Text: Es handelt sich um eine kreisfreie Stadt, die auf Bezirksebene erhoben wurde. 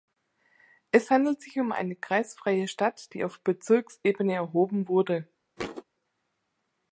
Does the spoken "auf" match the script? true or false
true